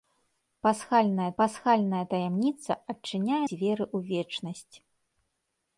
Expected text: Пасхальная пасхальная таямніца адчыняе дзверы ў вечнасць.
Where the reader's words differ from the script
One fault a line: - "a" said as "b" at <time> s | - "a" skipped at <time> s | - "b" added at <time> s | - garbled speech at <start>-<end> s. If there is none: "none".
none